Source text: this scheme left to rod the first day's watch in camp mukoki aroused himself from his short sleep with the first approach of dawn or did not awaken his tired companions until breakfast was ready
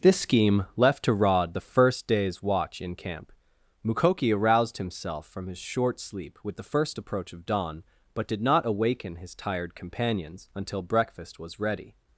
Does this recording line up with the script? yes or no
no